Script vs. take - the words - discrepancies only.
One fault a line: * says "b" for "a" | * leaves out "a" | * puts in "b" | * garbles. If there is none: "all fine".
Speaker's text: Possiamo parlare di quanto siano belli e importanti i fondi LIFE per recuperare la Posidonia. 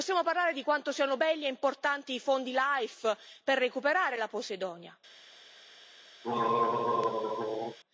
all fine